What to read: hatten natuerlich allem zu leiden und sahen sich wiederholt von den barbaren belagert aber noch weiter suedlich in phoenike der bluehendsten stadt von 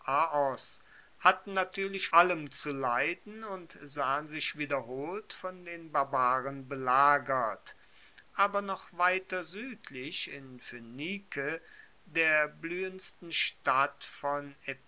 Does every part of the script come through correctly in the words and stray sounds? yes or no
yes